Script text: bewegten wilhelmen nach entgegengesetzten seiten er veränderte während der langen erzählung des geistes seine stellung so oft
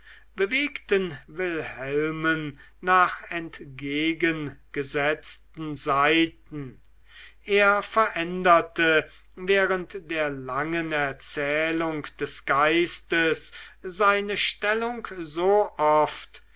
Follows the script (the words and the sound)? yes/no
yes